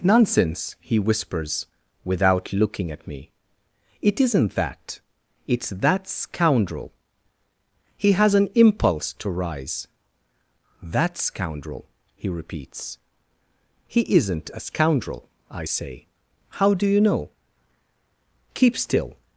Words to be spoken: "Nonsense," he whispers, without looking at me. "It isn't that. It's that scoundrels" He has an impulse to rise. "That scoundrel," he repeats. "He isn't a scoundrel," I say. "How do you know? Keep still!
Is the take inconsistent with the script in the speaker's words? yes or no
yes